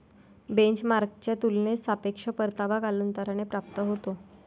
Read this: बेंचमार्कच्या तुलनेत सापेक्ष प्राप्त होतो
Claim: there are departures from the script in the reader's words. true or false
true